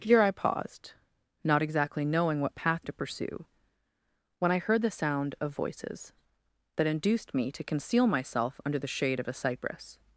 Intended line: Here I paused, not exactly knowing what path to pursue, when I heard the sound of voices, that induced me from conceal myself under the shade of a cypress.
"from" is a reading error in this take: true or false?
true